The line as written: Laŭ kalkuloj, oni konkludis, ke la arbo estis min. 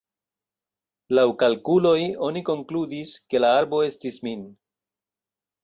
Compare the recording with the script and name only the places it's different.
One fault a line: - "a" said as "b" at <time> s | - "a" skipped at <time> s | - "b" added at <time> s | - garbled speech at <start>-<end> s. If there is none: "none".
none